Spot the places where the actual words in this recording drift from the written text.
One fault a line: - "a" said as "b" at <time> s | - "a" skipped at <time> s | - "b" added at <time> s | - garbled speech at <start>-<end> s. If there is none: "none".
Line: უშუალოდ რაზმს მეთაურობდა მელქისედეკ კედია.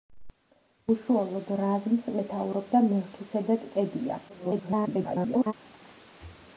- garbled speech at 4.3-5.5 s